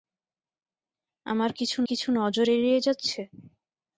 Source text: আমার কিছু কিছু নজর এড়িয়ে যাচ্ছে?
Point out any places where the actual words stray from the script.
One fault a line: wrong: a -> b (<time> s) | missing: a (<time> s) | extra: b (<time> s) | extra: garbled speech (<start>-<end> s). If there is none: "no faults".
no faults